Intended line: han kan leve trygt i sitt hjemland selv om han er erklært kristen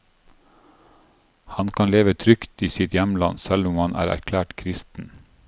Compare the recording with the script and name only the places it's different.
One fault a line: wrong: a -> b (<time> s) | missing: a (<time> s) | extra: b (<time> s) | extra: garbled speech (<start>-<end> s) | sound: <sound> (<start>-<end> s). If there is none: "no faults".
no faults